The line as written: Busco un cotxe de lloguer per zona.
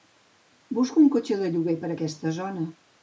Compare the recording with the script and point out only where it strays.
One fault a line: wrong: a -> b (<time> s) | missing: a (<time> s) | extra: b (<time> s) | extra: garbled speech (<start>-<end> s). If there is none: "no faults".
extra: aquesta (1.9 s)